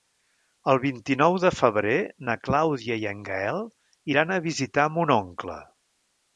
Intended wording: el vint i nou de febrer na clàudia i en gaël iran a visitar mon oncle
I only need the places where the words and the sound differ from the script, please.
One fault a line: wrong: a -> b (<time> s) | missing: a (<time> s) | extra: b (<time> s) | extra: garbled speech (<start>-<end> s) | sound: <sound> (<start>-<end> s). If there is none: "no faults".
no faults